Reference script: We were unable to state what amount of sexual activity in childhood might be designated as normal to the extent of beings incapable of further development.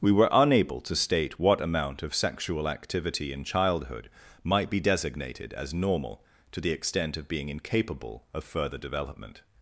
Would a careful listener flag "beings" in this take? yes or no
yes